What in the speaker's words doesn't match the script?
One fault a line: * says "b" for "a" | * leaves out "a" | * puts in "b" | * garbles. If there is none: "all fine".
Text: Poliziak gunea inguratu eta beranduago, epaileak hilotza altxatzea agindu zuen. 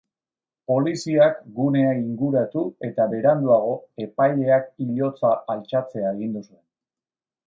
all fine